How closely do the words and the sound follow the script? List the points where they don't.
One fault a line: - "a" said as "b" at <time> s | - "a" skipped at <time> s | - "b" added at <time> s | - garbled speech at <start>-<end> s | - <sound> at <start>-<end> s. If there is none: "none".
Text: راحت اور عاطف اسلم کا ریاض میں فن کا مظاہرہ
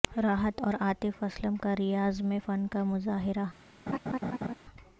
- laugh at 3.9-4.5 s